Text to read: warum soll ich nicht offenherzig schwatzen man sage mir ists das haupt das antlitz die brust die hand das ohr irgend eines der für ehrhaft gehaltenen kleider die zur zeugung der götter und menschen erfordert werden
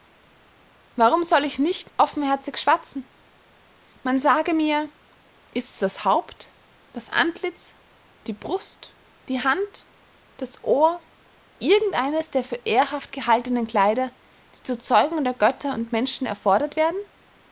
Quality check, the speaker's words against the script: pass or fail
pass